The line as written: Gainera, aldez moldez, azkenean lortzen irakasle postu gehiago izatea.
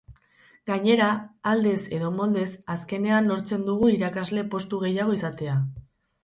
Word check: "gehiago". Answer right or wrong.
right